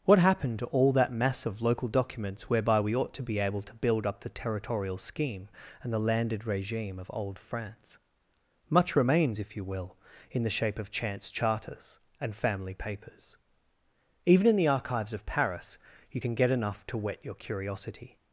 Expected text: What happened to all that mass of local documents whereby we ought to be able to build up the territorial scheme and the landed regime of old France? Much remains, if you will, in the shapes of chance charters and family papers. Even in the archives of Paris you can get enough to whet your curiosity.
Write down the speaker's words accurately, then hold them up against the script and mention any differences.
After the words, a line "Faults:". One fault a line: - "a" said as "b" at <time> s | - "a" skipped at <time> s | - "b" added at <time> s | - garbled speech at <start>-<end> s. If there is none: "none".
What happened to all that mass of local documents whereby we ought to be able to build up the territorial scheme and the landed regime of old France? Much remains, if you will, in the shape of chance charters and family papers. Even in the archives of Paris you can get enough to whet your curiosity.
Faults:
- "shapes" said as "shape" at 10.5 s